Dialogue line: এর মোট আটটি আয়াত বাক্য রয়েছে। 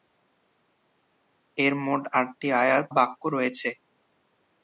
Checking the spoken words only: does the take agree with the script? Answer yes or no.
yes